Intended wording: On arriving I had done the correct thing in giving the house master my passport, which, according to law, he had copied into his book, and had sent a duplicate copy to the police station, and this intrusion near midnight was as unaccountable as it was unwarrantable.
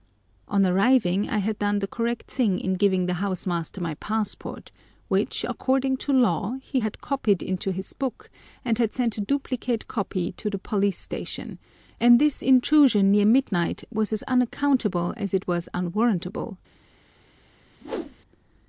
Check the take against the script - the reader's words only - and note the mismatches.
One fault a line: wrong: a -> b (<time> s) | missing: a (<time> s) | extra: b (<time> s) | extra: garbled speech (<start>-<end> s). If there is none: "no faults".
no faults